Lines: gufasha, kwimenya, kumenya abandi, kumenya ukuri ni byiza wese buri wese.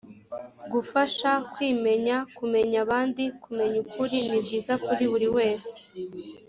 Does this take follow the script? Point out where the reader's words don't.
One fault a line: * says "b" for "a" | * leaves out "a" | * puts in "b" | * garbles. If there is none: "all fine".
* says "kuri" for "wese"